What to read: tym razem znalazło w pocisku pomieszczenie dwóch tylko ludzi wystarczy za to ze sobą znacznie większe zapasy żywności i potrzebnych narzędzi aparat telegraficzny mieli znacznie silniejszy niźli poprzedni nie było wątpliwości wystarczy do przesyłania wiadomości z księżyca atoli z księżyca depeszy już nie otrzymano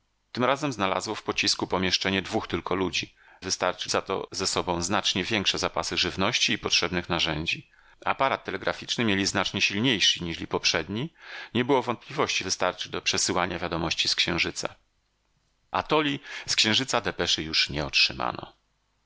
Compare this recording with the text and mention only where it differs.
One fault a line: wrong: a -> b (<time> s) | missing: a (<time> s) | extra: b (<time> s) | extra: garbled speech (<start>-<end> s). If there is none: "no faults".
no faults